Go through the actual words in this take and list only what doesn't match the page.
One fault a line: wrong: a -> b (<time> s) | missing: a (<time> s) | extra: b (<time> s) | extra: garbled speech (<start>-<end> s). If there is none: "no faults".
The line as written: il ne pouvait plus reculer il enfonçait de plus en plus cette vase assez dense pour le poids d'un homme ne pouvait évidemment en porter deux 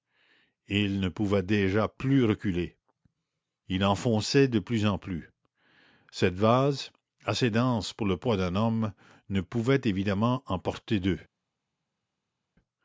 extra: déjà (1.4 s)